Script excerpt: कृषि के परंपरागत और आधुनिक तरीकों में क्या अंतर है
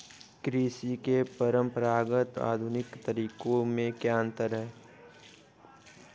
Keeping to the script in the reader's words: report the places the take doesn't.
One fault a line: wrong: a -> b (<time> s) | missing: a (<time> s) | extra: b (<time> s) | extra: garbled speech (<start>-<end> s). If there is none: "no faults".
missing: और (2.4 s)